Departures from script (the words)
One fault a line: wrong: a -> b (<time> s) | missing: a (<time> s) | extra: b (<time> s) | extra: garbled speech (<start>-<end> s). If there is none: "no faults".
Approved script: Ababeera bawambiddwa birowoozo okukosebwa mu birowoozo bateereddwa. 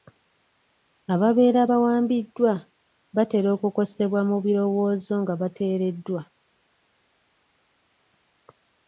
wrong: birowoozo -> batera (3.1 s)
extra: nga (5.2 s)